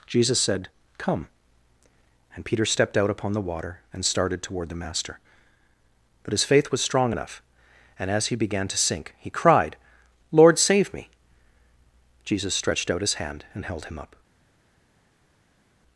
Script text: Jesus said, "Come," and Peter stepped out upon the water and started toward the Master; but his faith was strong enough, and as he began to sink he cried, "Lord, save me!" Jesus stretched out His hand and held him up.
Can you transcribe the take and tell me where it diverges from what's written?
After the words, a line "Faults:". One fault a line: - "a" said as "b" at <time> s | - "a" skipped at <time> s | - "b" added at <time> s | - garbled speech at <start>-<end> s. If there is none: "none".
Jesus said, "Come," and Peter stepped out upon the water and started toward the Master; but his faith was strong enough, and as he began to sink he cried, "Lord, save me!" Jesus stretched out His hand and held him up.
Faults:
none